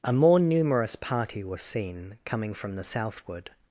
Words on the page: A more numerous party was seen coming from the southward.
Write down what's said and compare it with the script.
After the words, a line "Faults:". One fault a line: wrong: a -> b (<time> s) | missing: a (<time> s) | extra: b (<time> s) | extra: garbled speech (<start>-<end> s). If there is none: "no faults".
A more numerous party was seen coming from the southward.
Faults:
no faults